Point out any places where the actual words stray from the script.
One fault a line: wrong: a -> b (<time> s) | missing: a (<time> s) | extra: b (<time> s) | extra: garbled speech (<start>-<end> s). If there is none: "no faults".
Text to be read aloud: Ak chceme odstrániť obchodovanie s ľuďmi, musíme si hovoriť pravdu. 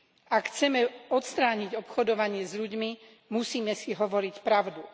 no faults